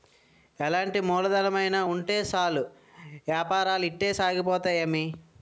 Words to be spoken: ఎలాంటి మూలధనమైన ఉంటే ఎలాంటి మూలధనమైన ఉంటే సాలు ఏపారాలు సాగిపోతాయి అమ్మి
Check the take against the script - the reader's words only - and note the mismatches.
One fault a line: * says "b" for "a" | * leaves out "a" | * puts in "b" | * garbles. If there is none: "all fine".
* leaves out "ఎలాంటి మూలధనమైన ఉంటే"
* puts in "ఇట్టే"